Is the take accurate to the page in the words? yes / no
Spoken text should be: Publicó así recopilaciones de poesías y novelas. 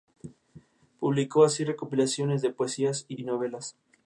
no